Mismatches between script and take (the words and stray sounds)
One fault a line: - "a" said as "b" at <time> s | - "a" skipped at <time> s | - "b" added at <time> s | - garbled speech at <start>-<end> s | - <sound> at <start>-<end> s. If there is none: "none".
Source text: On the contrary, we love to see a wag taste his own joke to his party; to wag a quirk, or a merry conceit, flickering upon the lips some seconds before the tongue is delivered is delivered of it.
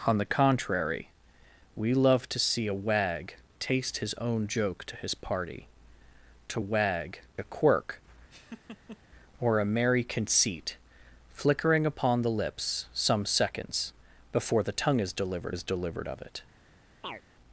- laugh at 8.3-9.0 s
- chirp at 17.0-17.2 s